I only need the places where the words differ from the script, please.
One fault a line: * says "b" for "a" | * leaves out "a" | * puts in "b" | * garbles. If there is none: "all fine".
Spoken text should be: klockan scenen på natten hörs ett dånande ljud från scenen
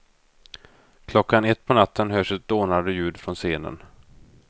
* says "ett" for "scenen"